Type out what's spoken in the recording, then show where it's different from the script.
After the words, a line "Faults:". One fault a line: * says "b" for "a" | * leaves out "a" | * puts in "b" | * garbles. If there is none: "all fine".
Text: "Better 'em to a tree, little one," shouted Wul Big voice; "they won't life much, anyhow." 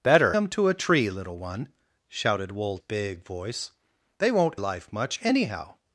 "Better 'em to a tree, little one," shouted Wul Big voice; "they won't life much, anyhow."
Faults:
all fine